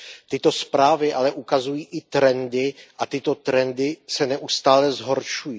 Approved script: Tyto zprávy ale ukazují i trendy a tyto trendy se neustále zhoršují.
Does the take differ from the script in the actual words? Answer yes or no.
no